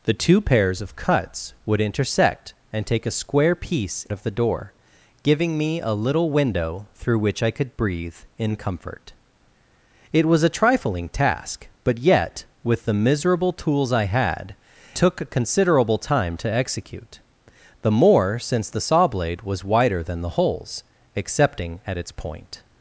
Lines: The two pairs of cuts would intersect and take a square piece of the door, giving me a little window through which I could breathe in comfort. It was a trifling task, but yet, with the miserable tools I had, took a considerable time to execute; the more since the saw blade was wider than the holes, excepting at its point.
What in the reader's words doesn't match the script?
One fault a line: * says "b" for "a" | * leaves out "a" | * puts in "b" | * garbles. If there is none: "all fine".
all fine